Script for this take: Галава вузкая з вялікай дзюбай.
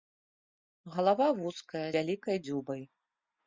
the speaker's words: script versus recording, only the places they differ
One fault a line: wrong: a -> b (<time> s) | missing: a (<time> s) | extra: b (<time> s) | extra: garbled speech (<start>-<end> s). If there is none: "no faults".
missing: з (1.9 s)